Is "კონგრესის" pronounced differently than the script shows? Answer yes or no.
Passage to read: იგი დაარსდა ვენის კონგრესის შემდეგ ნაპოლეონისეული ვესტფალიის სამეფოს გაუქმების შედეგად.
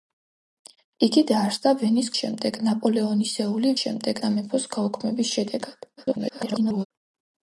yes